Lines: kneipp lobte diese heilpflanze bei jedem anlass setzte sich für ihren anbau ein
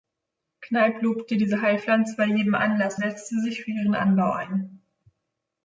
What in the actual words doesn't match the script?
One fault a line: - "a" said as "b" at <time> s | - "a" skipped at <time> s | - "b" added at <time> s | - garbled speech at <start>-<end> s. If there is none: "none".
none